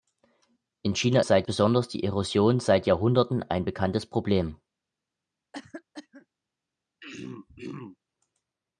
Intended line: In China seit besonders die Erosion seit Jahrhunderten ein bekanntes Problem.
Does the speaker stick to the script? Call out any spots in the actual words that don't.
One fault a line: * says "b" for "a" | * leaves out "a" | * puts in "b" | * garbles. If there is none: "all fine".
all fine